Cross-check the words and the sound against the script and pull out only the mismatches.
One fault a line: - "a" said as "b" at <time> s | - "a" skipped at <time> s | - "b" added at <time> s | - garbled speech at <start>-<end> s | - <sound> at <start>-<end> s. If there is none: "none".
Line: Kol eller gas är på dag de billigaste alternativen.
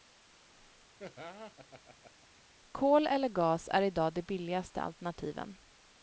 - laugh at 1.0-2.4 s
- "på" said as "i" at 3.8 s